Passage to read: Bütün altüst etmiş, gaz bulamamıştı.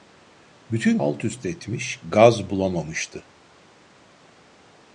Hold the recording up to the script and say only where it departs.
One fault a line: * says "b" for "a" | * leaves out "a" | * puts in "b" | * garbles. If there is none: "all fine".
all fine